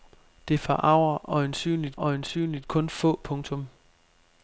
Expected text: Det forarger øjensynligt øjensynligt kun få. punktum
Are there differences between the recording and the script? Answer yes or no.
no